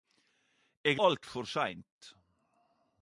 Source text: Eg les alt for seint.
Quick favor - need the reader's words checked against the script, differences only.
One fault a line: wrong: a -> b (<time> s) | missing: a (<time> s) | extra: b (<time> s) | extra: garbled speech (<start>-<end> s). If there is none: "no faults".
missing: les (1.0 s)